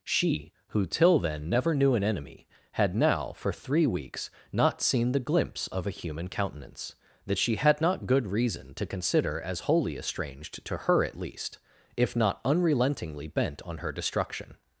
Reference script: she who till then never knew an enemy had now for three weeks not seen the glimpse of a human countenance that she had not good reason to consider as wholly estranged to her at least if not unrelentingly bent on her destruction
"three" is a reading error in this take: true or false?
false